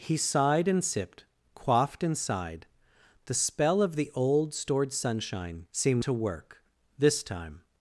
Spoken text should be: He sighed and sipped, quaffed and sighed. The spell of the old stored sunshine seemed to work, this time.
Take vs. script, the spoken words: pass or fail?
pass